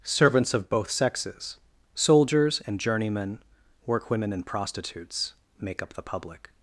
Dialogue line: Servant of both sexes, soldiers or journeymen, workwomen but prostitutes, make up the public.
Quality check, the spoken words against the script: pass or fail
fail